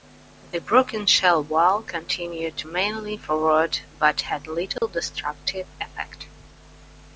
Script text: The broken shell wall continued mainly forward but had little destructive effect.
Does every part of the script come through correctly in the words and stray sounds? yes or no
no